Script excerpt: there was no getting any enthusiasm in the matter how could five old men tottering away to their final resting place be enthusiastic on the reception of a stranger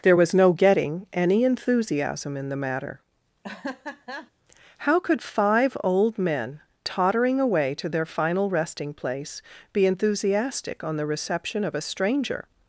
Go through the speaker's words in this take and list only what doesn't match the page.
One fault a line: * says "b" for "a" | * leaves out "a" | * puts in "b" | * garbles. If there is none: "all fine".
all fine